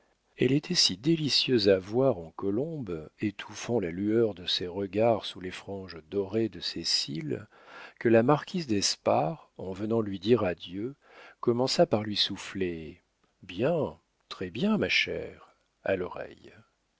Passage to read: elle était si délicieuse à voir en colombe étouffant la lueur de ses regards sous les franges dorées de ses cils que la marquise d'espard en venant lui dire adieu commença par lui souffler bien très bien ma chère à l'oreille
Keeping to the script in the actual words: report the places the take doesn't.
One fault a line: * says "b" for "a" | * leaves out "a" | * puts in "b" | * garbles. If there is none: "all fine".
all fine